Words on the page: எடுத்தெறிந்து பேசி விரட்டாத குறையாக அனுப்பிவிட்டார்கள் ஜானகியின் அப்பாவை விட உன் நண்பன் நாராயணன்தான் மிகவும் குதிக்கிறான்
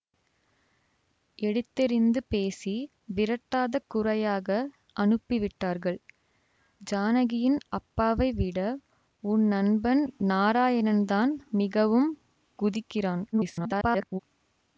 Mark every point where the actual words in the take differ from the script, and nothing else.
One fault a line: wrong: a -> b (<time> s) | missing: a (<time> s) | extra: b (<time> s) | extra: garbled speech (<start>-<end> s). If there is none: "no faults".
extra: garbled speech (13.3-14.2 s)